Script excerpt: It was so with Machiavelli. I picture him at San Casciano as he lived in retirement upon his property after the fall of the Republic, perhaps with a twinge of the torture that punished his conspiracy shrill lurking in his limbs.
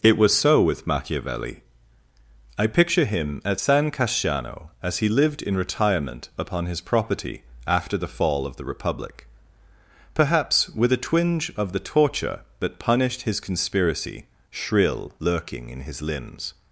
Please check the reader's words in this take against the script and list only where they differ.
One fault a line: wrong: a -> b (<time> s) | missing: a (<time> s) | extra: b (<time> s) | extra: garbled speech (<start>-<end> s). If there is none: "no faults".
no faults